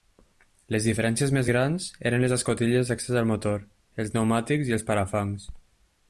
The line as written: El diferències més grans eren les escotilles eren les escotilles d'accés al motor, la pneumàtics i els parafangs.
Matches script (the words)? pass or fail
fail